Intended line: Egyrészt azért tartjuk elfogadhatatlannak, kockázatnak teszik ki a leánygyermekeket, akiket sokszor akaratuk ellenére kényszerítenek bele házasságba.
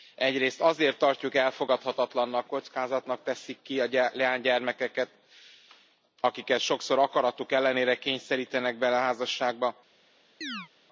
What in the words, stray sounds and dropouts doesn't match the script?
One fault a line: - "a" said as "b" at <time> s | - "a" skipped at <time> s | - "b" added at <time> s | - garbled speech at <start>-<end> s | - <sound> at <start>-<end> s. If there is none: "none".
- chirp at 10.4-10.7 s